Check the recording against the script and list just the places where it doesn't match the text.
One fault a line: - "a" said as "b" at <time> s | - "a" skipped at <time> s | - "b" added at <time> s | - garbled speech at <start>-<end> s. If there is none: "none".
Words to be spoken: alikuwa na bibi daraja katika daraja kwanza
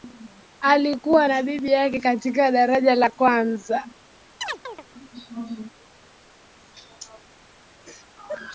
- "daraja" said as "yake" at 1.7 s
- "la" added at 2.9 s